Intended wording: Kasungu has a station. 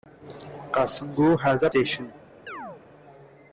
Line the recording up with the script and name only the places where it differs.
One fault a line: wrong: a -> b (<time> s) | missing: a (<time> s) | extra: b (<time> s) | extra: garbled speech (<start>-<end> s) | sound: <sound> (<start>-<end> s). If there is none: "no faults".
sound: chirp (2.5-2.8 s)